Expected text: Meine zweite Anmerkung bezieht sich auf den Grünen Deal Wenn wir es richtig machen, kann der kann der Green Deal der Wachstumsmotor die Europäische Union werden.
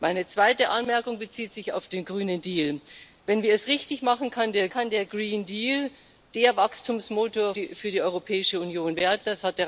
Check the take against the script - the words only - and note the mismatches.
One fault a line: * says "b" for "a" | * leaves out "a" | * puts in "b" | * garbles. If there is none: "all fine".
all fine